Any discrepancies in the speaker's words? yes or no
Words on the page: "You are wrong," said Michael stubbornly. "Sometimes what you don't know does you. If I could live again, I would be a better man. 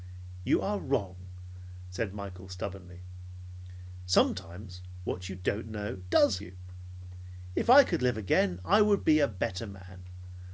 no